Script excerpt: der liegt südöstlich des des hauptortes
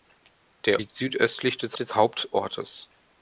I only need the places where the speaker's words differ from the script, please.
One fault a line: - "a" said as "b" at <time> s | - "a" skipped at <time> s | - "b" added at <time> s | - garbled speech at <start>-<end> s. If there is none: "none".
none